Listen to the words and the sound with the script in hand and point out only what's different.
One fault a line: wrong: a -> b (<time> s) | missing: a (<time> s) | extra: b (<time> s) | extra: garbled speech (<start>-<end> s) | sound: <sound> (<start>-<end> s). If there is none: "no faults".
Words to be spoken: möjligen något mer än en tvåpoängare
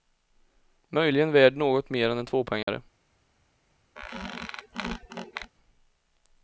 extra: värd (1.3 s)
sound: dropout (2.6-2.7 s)
sound: squeak (4.0-5.5 s)